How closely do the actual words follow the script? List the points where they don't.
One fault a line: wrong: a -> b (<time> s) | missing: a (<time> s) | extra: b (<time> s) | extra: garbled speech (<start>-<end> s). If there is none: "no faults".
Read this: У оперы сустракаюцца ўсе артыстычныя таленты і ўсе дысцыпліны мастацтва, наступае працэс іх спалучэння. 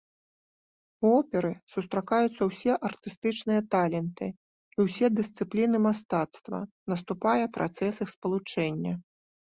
no faults